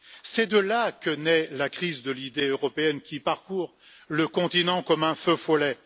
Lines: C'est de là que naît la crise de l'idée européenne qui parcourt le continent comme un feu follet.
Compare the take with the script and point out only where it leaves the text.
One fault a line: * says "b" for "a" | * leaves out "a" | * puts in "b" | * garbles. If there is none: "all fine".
all fine